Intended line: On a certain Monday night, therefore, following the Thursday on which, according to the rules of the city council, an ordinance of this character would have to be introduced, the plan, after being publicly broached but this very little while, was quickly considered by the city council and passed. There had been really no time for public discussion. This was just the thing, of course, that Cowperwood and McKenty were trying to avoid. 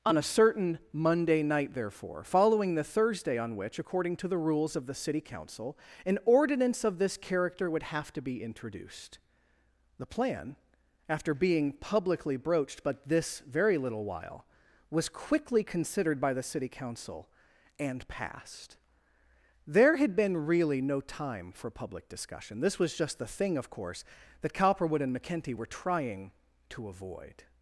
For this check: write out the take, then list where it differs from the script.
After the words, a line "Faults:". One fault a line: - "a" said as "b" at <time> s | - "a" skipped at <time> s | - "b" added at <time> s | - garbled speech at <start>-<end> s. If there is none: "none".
On a certain Monday night, therefore, following the Thursday on which, according to the rules of the city council, an ordinance of this character would have to be introduced, the plan, after being publicly broached but this very little while, was quickly considered by the city council and passed. There had been really no time for public discussion. This was just the thing, of course, that Cowperwood and McKenty were trying to avoid.
Faults:
none